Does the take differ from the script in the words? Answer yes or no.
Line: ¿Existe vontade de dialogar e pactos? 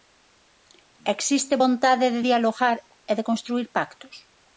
yes